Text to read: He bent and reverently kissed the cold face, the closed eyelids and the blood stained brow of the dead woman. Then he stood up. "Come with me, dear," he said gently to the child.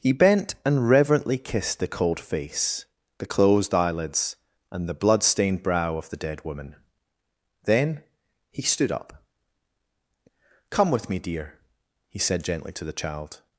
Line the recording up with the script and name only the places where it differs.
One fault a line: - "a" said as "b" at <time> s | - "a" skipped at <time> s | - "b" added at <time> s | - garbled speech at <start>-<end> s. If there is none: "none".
none